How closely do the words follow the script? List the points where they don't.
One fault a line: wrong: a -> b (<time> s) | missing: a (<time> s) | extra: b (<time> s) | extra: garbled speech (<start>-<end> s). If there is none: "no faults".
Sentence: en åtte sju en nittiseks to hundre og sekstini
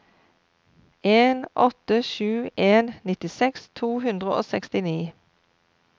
no faults